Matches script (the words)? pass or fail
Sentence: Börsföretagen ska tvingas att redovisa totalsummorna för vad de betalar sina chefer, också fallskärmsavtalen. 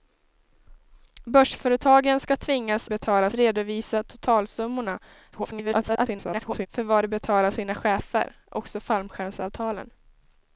fail